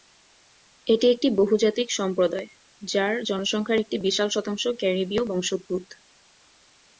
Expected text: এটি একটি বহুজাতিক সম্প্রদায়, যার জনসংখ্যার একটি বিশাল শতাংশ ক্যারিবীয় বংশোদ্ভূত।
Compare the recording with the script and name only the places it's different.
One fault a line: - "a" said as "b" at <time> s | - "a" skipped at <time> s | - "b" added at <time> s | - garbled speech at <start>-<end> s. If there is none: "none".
none